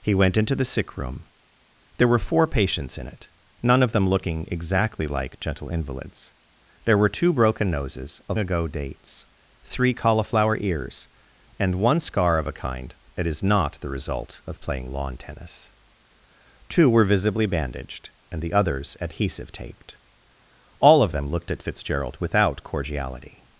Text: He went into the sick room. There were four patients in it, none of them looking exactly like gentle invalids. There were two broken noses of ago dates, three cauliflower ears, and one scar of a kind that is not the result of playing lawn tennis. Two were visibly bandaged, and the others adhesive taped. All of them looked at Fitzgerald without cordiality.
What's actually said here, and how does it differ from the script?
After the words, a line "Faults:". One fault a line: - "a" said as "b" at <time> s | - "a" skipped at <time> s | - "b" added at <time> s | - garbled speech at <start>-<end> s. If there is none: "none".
He went into the sick room. There were four patients in it, none of them looking exactly like gentle invalids. There were two broken noses of ago dates, three cauliflower ears, and one scar of a kind that is not the result of playing lawn tennis. Two were visibly bandaged, and the others adhesive taped. All of them looked at Fitzgerald without cordiality.
Faults:
none